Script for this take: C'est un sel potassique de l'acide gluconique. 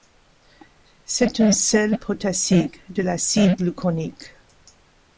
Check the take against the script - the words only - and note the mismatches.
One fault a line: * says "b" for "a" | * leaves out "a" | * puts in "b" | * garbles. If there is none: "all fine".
all fine